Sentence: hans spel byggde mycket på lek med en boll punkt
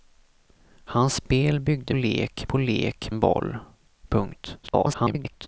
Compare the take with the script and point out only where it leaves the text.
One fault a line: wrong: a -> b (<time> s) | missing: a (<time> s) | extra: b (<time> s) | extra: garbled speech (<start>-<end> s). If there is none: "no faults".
wrong: mycket -> lek (1.9 s)
missing: med (3.1 s)
extra: garbled speech (4.6-5.5 s)